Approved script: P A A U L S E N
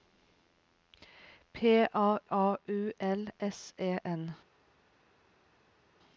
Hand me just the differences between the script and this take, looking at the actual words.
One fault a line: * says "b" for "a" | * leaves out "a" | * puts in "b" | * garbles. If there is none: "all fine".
all fine